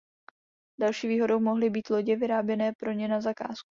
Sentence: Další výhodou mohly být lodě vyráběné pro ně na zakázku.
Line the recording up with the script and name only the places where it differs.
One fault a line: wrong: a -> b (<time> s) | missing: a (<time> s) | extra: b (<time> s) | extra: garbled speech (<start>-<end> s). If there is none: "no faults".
no faults